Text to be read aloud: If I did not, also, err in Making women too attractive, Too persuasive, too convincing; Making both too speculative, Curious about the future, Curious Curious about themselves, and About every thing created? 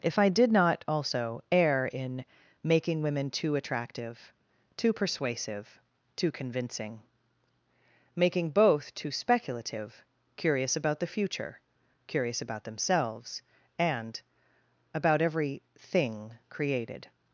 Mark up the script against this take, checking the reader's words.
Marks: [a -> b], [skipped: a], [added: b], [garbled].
If I did not, also, err in Making women too attractive, Too persuasive, too convincing; Making both too speculative, Curious about the future, Curious [skipped: Curious] about themselves, and About every thing created?